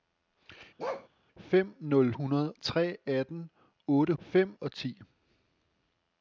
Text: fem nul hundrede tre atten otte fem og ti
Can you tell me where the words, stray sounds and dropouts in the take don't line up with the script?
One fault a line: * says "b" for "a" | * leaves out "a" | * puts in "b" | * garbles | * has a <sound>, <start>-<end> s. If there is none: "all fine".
* has a bark, 0.8-1.1 s